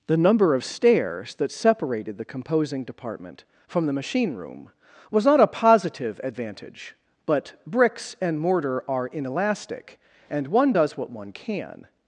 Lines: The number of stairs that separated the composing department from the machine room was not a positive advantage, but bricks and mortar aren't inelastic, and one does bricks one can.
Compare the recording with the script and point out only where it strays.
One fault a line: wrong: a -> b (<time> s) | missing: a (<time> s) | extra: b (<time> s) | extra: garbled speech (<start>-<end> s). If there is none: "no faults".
wrong: aren't -> are (8.9 s)
wrong: bricks -> what (11.0 s)